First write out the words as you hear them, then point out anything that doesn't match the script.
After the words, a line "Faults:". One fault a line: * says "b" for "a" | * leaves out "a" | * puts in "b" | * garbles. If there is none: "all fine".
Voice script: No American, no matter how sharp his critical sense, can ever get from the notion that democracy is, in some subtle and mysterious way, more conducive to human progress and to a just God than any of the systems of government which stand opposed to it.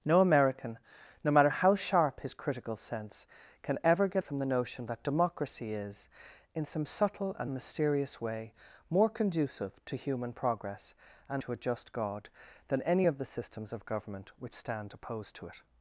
No American, no matter how sharp his critical sense, can ever get from the notion that democracy is, in some subtle and mysterious way, more conducive to human progress and to a just God than any of the systems of government which stand opposed to it.
Faults:
all fine